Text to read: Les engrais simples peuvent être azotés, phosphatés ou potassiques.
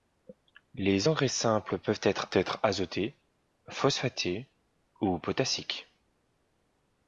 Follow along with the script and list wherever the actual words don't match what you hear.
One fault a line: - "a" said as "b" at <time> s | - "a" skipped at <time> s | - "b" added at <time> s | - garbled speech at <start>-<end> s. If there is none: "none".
- "être" added at 2.3 s